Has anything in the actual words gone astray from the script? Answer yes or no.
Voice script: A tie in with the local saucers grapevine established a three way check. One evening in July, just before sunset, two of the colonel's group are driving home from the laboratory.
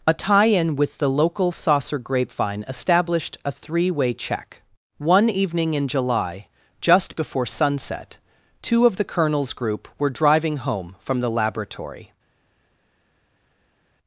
yes